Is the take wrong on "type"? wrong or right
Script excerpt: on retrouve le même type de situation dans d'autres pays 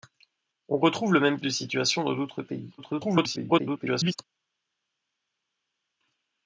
wrong